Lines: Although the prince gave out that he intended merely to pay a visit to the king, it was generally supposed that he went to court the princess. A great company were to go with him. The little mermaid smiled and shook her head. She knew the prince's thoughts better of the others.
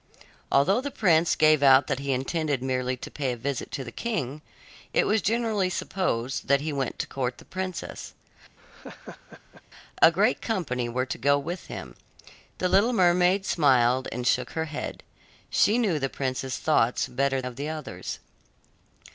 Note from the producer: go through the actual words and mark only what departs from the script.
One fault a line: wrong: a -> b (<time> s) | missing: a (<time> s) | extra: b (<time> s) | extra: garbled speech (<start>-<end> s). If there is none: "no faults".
no faults